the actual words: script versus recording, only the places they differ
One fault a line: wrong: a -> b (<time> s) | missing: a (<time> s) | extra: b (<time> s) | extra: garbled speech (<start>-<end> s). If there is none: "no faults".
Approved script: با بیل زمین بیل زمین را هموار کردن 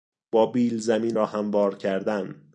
missing: بیل زمین (1.2 s)